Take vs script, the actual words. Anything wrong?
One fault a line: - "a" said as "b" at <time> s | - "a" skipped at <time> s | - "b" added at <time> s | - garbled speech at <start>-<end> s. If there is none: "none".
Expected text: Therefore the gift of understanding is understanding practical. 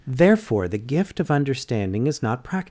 - "understanding" said as "not" at 2.2 s